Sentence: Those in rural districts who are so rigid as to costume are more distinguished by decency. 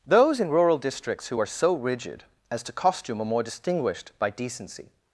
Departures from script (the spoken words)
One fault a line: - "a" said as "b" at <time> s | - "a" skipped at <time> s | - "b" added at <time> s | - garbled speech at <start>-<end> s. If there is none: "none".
none